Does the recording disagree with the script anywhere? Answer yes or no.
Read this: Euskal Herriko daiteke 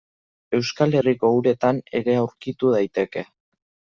yes